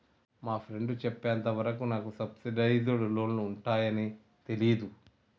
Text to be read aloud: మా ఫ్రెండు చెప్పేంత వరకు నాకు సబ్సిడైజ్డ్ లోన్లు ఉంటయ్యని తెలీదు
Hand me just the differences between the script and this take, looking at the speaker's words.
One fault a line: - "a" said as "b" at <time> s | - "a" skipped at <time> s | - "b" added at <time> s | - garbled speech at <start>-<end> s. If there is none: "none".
none